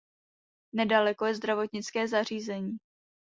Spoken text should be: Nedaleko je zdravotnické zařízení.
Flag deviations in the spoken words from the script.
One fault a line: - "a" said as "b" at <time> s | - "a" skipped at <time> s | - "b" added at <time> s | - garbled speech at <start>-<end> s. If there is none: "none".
none